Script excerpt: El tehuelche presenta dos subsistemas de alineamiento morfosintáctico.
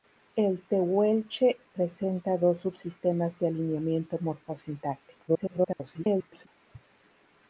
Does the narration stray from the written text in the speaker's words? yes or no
yes